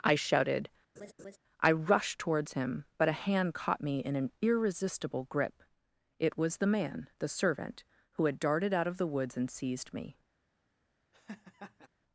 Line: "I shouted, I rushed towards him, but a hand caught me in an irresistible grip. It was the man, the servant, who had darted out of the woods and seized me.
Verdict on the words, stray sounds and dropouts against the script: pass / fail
fail